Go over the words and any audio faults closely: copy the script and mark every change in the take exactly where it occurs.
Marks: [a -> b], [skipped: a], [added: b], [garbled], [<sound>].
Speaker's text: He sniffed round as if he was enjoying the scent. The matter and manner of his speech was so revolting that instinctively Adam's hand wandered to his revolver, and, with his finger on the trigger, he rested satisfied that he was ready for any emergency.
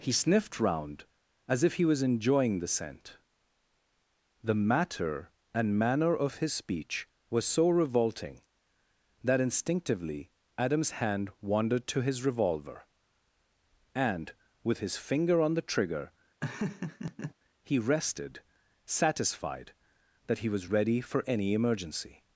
He sniffed round as if he was enjoying the scent. The matter and manner of his speech was so revolting that instinctively Adam's hand wandered to his revolver, and, with his finger on the trigger, [laugh] he rested satisfied that he was ready for any emergency.